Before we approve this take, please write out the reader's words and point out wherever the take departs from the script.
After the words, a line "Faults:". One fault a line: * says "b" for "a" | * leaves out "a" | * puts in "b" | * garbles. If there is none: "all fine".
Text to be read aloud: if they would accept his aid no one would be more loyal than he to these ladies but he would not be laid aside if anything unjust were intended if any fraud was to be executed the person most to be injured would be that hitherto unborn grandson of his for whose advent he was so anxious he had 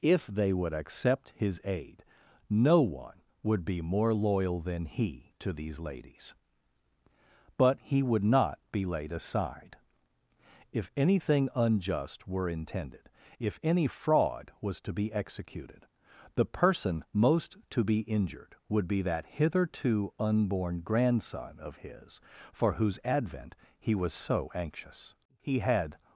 if they would accept his aid no one would be more loyal than he to these ladies but he would not be laid aside if anything unjust were intended if any fraud was to be executed the person most to be injured would be that hitherto unborn grandson of his for whose advent he was so anxious he had
Faults:
all fine